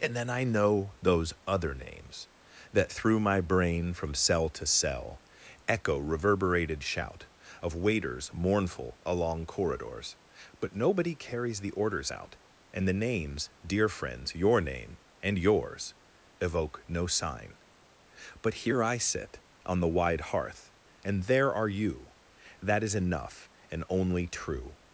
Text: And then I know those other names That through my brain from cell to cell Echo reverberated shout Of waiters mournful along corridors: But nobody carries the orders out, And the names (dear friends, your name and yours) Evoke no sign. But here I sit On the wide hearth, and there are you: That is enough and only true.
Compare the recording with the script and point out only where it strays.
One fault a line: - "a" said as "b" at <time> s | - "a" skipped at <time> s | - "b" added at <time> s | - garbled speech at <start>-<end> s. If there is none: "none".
none